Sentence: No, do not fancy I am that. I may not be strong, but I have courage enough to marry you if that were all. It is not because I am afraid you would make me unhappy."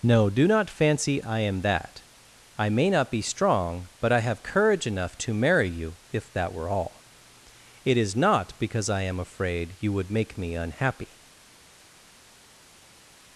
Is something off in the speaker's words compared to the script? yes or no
no